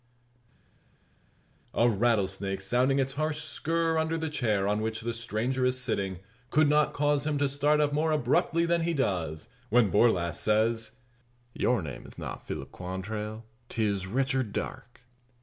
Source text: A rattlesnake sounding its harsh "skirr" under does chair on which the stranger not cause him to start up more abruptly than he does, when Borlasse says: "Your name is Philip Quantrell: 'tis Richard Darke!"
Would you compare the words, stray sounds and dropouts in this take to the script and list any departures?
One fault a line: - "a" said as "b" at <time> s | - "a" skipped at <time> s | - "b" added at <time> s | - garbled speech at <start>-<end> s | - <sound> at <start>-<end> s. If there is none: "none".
- "does" said as "the" at 4.2 s
- "is sitting could" added at 5.6 s
- "not" added at 12.2 s